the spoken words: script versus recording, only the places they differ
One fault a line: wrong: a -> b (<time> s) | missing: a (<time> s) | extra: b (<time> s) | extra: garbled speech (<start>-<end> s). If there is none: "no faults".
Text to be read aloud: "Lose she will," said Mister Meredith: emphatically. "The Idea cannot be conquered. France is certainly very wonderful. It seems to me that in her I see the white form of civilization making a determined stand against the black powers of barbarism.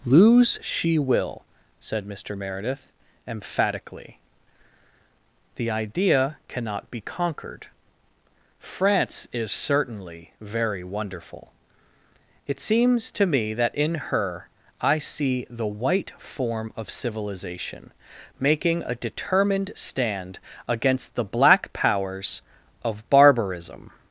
no faults